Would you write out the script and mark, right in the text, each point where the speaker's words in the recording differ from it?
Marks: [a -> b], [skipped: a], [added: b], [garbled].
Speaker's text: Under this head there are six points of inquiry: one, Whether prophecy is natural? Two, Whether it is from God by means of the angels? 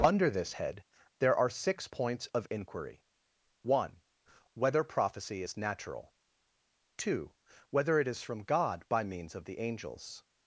Under this head there are six points of inquiry: one, Whether prophecy is natural? Two, Whether it is from God by means of the angels?